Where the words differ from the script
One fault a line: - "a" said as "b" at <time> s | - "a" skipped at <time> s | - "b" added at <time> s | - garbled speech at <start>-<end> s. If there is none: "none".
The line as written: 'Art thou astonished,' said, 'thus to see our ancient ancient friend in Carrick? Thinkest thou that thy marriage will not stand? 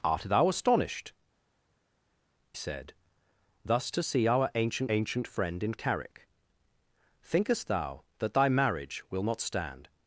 none